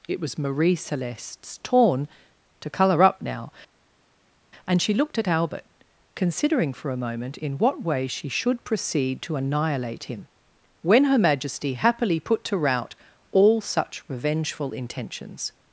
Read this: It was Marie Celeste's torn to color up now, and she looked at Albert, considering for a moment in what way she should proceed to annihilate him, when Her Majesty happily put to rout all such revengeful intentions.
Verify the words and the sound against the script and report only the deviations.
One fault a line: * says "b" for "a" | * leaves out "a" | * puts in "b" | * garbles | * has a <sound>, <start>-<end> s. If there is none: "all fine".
all fine